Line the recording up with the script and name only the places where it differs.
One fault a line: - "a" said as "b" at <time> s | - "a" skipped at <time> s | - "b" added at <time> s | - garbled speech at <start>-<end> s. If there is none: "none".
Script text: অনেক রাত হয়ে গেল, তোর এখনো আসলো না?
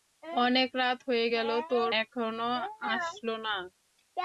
none